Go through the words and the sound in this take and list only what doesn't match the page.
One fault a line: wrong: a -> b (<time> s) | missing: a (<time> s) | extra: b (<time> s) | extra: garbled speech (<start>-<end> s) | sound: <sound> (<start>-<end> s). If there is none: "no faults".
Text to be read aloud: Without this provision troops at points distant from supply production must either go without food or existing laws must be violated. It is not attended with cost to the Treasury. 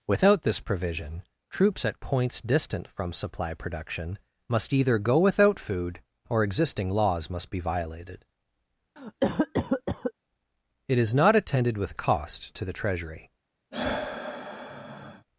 sound: cough (9.0-10.1 s)
sound: sigh (13.7-15.3 s)